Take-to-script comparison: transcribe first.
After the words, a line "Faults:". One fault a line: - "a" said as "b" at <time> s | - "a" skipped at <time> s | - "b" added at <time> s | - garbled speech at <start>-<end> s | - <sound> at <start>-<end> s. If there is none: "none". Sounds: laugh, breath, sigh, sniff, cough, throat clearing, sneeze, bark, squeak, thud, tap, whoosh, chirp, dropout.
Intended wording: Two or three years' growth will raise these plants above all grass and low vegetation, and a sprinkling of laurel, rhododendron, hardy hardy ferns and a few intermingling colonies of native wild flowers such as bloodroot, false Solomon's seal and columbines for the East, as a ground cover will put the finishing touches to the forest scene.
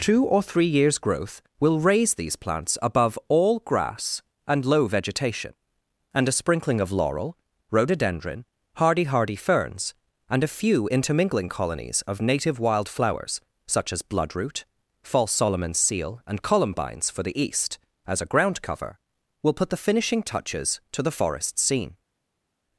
Two or three years' growth will raise these plants above all grass and low vegetation, and a sprinkling of laurel, rhododendron, hardy hardy ferns and a few intermingling colonies of native wild flowers such as bloodroot, false Solomon's seal and columbines for the East, as a ground cover will put the finishing touches to the forest scene.
Faults:
none